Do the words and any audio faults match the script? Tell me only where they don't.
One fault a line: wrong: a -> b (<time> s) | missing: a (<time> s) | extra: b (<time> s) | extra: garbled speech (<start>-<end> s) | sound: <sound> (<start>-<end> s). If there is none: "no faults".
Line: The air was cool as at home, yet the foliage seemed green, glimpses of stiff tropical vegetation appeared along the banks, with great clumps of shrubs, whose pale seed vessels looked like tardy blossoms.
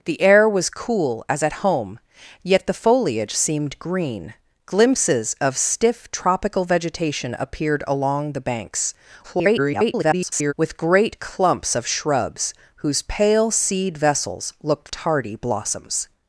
extra: garbled speech (9.2-10.5 s)
missing: like (14.9 s)